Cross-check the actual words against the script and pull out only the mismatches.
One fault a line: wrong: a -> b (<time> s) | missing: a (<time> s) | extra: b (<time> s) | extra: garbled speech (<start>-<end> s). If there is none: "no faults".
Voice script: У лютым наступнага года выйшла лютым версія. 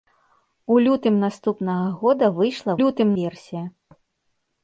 no faults